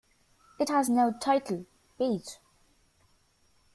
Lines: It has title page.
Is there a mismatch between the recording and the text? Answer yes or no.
yes